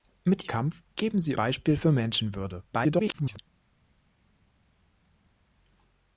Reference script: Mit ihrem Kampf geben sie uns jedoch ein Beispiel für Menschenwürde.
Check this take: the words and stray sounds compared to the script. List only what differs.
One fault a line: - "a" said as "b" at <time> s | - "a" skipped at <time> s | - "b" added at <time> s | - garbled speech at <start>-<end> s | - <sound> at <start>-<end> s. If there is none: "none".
- "ihrem" skipped at 0.5 s
- "uns jedoch ein" skipped at 1.3 s
- garbled speech at 2.7-3.4 s